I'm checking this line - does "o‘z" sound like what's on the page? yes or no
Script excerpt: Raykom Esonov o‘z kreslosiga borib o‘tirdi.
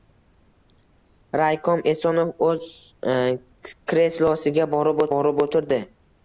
yes